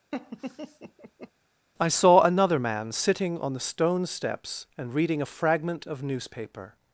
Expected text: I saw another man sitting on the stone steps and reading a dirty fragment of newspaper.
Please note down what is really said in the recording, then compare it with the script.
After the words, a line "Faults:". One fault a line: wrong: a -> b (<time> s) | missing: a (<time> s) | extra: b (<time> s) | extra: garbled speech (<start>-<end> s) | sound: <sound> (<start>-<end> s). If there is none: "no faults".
I saw another man sitting on the stone steps and reading a fragment of newspaper.
Faults:
sound: laugh (0.1-1.3 s)
missing: dirty (5.3 s)